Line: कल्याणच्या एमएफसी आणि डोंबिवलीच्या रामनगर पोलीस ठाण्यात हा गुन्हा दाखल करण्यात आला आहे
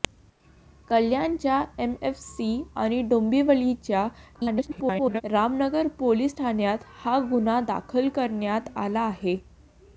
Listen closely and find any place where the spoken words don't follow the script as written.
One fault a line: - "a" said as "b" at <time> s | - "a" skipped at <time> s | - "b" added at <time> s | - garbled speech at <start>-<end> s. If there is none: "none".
- garbled speech at 4.3-5.2 s